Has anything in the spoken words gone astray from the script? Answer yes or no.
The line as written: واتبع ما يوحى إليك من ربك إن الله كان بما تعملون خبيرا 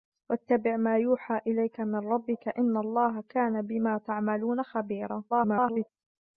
yes